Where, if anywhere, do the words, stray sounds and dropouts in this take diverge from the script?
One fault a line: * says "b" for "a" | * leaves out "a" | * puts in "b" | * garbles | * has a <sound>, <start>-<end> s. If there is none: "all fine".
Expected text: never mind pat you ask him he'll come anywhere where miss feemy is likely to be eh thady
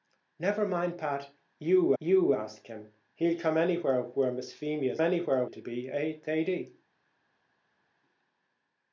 * puts in "you"
* says "anywhere" for "likely"